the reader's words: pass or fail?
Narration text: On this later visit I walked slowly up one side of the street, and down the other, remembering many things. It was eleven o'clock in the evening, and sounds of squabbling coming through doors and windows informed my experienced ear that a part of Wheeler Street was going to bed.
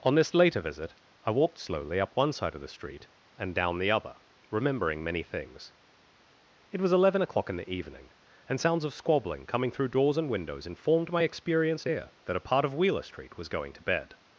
pass